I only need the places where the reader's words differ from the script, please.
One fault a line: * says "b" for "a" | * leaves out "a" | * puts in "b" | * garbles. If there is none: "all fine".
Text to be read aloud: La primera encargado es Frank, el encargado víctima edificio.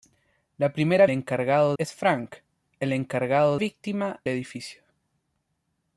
all fine